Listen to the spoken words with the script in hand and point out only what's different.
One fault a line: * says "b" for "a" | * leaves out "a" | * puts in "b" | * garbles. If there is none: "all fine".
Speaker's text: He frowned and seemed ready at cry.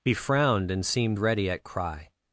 all fine